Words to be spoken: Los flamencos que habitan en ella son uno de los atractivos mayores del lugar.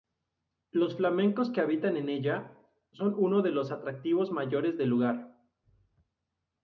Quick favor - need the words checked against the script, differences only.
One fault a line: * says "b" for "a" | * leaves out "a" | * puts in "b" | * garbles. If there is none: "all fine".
all fine